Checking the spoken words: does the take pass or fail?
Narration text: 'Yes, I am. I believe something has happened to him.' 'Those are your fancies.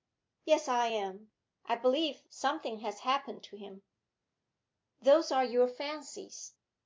pass